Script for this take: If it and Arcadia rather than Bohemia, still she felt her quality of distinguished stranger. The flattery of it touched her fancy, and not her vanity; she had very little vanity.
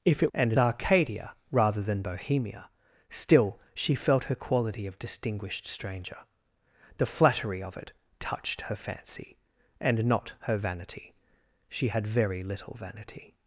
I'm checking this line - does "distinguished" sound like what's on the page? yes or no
yes